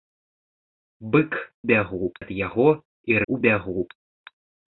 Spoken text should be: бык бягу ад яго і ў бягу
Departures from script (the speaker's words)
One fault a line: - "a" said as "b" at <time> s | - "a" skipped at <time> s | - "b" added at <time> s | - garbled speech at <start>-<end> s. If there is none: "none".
none